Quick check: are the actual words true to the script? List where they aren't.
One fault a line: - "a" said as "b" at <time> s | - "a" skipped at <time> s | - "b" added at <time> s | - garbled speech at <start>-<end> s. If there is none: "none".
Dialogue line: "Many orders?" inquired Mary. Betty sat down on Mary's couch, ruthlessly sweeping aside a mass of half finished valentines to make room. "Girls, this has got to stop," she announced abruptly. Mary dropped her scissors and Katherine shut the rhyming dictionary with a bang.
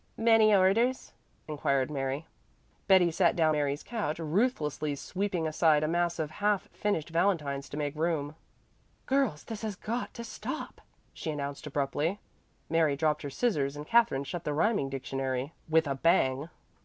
- "on" skipped at 3.5 s